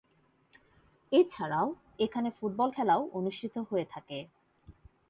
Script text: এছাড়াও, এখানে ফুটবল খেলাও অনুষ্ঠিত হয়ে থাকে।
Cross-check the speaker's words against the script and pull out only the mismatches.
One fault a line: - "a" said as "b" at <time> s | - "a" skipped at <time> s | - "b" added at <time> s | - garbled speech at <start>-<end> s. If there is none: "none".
none